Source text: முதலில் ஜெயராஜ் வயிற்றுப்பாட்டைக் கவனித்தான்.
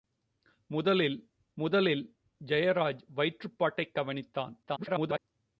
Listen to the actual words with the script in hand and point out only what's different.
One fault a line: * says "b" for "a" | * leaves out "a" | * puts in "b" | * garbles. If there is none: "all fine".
* puts in "முதலில்"
* garbles